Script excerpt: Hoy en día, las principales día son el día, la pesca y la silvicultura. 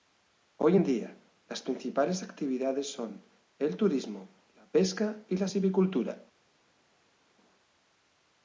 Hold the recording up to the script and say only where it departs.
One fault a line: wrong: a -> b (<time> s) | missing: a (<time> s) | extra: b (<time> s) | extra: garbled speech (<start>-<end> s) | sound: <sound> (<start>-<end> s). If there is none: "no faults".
wrong: día -> actividades (2.2 s)
wrong: día -> turismo (3.7 s)